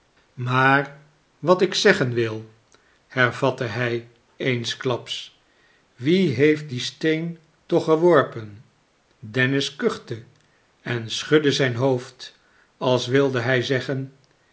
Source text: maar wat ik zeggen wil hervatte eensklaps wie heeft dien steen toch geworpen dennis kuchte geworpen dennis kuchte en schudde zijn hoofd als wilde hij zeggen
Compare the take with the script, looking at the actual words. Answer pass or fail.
fail